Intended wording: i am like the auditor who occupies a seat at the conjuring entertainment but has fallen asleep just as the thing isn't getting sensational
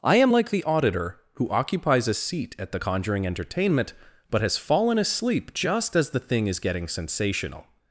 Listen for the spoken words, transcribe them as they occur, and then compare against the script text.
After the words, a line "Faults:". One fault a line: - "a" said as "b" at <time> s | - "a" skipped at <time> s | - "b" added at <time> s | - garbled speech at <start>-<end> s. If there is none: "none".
i am like the auditor who occupies a seat at the conjuring entertainment but has fallen asleep just as the thing is getting sensational
Faults:
- "isn't" said as "is" at 6.5 s